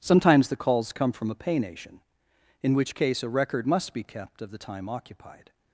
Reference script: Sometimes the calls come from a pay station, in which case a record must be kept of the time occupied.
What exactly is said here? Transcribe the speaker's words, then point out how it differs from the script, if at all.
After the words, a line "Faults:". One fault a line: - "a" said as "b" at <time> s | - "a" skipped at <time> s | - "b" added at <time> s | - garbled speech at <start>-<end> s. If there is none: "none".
Sometimes the calls come from a pay nation, in which case a record must be kept of the time occupied.
Faults:
- "station" said as "nation" at 1.6 s